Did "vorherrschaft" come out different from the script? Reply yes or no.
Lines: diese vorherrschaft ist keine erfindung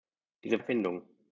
yes